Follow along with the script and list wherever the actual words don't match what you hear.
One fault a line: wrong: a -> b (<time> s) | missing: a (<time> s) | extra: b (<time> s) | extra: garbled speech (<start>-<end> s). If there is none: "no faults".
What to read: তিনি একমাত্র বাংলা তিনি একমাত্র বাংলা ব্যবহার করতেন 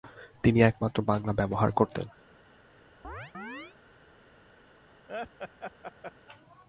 missing: তিনি একমাত্র বাংলা (1.3 s)